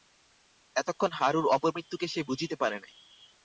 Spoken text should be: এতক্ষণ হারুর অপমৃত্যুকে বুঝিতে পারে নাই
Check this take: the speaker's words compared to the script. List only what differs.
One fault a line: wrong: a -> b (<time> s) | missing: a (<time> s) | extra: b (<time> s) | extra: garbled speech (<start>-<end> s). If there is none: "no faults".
extra: সে (2.1 s)